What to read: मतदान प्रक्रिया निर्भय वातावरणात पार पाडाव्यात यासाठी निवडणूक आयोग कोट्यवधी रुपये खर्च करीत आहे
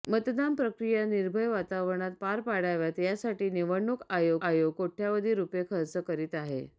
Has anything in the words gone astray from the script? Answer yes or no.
yes